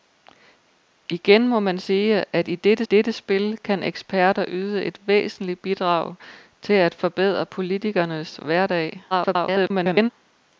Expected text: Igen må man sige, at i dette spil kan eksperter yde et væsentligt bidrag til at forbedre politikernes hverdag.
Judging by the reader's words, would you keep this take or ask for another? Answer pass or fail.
fail